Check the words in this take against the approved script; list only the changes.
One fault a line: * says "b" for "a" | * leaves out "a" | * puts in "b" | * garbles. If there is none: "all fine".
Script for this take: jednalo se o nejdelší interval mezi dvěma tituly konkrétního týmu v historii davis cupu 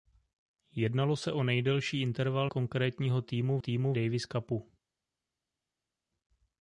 * leaves out "mezi dvěma tituly"
* says "týmu" for "historii"